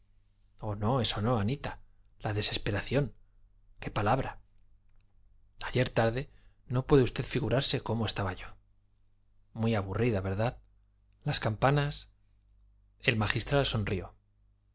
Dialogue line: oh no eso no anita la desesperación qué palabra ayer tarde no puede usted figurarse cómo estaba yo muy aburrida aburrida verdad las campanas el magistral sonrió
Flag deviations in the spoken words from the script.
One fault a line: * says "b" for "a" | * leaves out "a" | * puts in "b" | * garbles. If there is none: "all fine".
* leaves out "aburrida"